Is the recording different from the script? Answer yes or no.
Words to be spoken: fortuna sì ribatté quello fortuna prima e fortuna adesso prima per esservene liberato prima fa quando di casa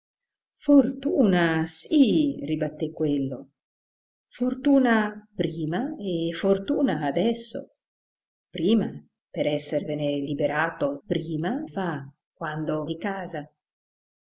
no